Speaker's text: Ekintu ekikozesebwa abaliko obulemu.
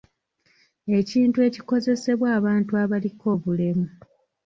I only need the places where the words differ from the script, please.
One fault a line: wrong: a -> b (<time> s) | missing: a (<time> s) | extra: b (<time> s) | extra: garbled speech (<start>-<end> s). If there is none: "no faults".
extra: abantu (2.4 s)